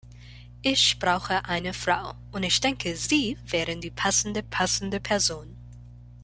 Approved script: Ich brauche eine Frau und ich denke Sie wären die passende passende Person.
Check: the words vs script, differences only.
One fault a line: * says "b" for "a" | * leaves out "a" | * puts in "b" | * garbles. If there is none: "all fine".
all fine